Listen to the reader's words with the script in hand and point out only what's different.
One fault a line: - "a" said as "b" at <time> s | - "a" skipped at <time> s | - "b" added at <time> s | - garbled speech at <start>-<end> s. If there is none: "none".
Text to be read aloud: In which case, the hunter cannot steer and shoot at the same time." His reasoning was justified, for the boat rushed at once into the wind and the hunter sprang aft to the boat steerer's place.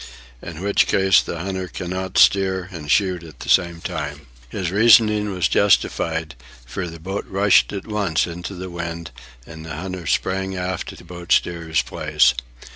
none